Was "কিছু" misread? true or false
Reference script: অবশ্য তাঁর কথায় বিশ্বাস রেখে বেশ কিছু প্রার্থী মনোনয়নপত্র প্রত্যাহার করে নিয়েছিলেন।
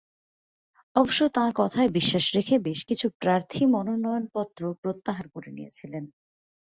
false